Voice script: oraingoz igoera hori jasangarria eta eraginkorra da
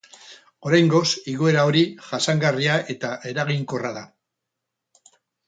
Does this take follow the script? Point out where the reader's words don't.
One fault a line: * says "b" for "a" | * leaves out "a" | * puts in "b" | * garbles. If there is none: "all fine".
all fine